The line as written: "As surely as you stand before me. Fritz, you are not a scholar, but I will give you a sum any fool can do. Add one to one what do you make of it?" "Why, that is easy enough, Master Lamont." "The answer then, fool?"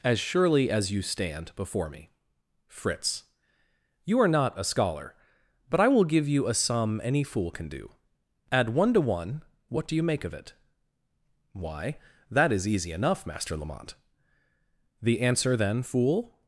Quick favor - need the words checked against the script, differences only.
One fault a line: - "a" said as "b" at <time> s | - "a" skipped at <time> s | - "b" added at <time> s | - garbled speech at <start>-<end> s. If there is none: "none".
none